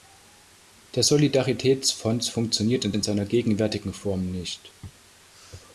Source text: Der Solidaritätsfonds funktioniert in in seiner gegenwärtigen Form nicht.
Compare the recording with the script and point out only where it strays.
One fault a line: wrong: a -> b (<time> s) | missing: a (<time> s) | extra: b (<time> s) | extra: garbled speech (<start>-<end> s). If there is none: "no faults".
no faults